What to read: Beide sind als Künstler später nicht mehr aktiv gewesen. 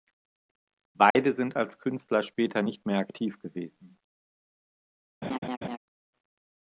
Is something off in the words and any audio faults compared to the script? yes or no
yes